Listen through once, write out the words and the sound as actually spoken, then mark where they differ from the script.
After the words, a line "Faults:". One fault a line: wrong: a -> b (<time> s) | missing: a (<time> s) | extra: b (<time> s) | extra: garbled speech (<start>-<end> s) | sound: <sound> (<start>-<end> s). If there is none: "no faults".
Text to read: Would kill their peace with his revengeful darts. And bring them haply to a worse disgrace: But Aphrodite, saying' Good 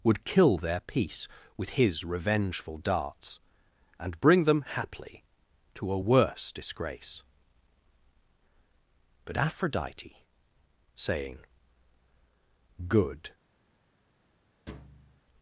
Would kill their peace with his revengeful darts. And bring them haply to a worse disgrace: But Aphrodite, saying' Good
Faults:
sound: thud (14.7-15.2 s)